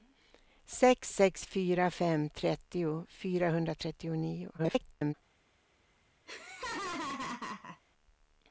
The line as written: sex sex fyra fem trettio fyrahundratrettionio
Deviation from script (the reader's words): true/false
true